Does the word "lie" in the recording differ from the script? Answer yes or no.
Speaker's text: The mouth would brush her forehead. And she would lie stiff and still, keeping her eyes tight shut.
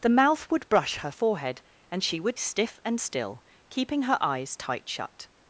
yes